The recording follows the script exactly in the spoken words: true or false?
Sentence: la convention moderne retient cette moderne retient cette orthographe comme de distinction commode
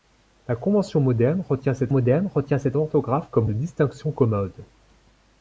true